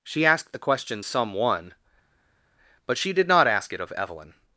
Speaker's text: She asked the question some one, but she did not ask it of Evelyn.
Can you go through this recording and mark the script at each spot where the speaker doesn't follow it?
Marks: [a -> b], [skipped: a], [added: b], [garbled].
She asked the question some one, but she did not ask it of Evelyn.